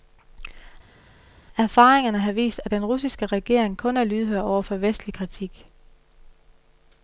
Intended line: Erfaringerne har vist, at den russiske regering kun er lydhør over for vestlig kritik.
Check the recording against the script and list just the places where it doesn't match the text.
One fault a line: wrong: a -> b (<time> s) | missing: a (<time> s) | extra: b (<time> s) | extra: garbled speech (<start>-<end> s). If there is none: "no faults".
no faults